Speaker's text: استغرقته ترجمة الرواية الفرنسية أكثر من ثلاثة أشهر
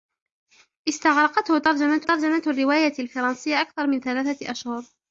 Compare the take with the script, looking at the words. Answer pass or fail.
fail